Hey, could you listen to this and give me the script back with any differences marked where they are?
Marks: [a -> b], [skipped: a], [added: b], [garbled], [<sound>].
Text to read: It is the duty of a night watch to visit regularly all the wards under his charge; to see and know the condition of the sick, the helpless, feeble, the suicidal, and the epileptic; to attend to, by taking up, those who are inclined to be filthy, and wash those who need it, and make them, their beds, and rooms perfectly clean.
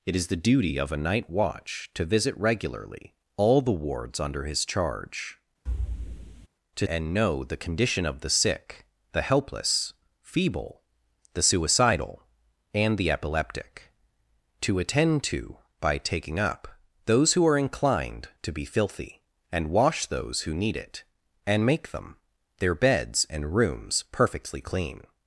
It is the duty of a night watch to visit regularly all the wards under his charge; [thud] to [skipped: see] and know the condition of the sick, the helpless, feeble, the suicidal, and the epileptic; to attend to, by taking up, those who are inclined to be filthy, and wash those who need it, and make them, their beds, and rooms perfectly clean.